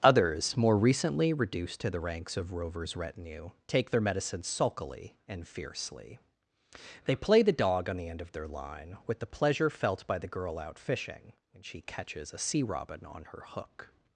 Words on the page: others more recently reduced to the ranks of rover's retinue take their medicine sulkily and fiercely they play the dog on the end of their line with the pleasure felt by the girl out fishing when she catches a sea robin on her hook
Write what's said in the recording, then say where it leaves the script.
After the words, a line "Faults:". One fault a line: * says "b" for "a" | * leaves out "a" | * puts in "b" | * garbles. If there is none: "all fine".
others more recently reduced to the ranks of rover's retinue take their medicine sulkily and fiercely they play the dog on the end of their line with the pleasure felt by the girl out fishing when she catches a sea robin on her hook
Faults:
all fine